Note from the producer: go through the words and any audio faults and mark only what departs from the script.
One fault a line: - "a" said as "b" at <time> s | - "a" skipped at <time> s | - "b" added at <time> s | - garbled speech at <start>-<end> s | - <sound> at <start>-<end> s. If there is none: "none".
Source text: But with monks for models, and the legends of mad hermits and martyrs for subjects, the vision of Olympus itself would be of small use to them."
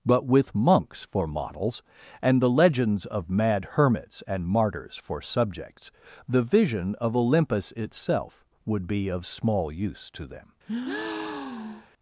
- breath at 10.7-11.9 s